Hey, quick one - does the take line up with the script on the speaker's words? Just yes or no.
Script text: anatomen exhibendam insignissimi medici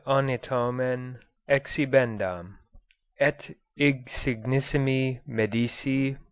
no